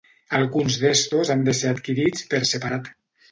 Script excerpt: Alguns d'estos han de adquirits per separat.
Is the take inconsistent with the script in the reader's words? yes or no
yes